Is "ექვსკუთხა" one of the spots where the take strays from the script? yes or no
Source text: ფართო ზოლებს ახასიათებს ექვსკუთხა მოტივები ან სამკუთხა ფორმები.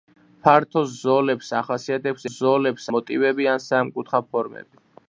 yes